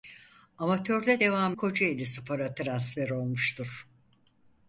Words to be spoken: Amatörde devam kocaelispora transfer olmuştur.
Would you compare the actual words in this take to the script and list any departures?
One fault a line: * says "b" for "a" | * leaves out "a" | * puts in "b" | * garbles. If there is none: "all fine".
all fine